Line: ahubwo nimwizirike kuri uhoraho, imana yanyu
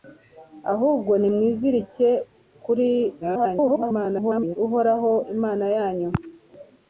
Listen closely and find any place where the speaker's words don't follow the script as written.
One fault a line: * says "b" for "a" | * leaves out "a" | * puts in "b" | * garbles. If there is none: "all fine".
* garbles